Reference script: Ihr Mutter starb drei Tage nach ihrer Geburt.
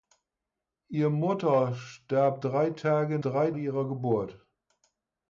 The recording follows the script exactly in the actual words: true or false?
false